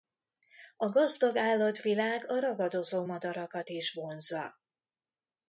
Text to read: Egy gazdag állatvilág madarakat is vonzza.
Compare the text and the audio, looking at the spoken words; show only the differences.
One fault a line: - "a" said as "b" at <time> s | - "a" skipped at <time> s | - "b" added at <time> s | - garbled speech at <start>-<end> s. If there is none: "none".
- "Egy" said as "A" at 0.8 s
- "a ragadozó" added at 2.3 s